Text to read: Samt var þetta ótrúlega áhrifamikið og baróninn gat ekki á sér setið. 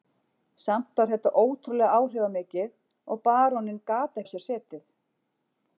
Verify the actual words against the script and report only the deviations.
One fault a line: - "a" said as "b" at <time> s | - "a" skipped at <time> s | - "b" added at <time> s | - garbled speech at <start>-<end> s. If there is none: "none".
- "ekki" skipped at 4.2 s